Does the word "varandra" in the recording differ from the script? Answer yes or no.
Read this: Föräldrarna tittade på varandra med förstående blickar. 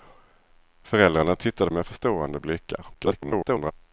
yes